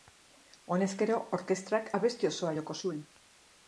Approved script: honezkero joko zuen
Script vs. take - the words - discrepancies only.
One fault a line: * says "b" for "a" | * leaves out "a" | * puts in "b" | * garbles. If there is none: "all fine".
* puts in "orkestrak abesti osoa"